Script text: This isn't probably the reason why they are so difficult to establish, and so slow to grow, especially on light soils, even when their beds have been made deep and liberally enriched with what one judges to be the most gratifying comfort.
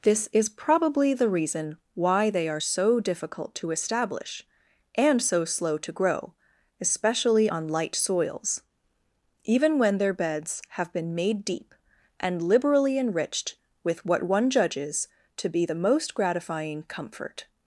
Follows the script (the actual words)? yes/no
no